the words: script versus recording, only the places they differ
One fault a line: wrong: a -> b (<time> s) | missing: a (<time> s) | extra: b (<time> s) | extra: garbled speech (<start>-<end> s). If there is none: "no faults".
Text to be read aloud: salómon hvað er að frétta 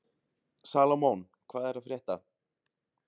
no faults